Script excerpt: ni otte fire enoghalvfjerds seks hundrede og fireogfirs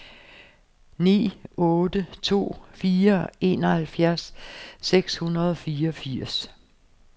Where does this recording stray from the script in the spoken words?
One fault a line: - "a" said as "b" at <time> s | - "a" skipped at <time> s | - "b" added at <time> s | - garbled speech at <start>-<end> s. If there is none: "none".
- "to" added at 2.3 s